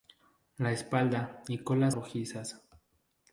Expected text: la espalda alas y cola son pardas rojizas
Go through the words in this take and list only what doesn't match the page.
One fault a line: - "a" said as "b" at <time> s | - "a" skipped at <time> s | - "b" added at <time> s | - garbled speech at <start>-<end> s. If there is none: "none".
- "alas" skipped at 1.4 s
- "son pardas" skipped at 1.9 s